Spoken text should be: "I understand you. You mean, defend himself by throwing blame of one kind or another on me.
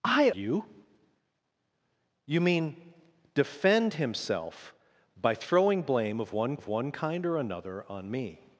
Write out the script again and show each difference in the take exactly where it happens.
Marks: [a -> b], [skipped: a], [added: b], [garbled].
"I [skipped: understand] you. You mean, defend himself by throwing blame of one [added: of one] kind or another on me.